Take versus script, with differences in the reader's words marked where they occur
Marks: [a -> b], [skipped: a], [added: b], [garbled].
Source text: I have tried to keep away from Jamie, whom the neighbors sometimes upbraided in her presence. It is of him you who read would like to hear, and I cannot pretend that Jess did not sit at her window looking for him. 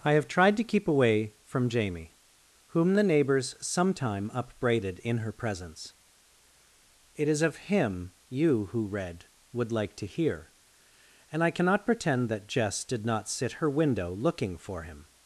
I have tried to keep away from Jamie, whom the neighbors [sometimes -> sometime] upbraided in her presence. It is of him you who read would like to hear, and I cannot pretend that Jess did not sit [skipped: at] her window looking for him.